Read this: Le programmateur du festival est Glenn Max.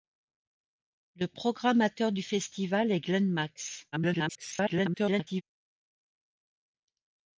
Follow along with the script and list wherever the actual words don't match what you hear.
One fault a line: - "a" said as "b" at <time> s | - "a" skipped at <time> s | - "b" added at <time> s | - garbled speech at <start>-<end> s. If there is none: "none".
- garbled speech at 3.9-5.4 s